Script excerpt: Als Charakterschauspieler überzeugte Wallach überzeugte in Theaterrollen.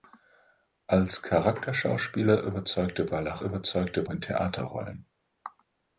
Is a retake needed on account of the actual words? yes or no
no